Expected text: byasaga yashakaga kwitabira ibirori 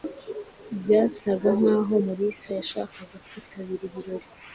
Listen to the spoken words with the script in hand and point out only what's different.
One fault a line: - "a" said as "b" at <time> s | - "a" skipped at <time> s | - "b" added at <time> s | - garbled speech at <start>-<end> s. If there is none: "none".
- "nkaho mulisa" added at 1.6 s